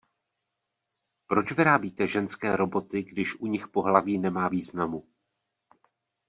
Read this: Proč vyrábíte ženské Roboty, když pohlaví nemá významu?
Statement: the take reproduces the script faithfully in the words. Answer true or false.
false